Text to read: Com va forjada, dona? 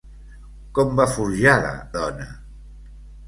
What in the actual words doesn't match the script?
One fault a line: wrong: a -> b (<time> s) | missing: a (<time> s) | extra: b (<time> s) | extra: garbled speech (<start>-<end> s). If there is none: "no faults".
no faults